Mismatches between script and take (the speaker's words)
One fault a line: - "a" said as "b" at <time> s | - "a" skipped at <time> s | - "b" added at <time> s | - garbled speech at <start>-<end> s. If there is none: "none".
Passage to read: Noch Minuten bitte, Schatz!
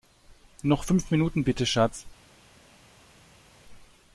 - "fünf" added at 0.8 s